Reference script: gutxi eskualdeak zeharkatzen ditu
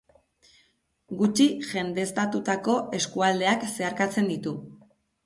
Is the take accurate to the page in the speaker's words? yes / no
no